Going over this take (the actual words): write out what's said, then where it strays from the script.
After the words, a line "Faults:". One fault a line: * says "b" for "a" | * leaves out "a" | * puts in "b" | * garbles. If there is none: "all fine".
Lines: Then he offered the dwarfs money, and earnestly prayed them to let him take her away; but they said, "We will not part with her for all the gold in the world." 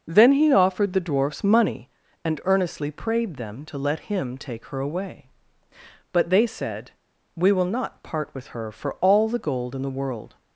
Then he offered the dwarfs money, and earnestly prayed them to let him take her away; but they said, "We will not part with her for all the gold in the world."
Faults:
all fine